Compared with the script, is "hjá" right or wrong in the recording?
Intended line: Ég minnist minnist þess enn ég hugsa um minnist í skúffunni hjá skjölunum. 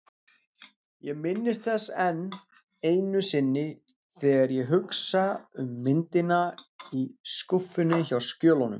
right